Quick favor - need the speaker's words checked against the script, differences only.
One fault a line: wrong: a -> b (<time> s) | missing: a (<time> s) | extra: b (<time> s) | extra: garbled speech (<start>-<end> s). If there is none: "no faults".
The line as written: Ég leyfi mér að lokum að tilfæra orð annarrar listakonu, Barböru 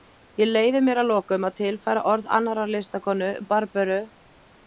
no faults